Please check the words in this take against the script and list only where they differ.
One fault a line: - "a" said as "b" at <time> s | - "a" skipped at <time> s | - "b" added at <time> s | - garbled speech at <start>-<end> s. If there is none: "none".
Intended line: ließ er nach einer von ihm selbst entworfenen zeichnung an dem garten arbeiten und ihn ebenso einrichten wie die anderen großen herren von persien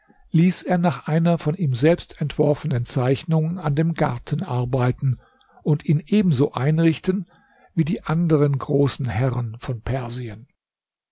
none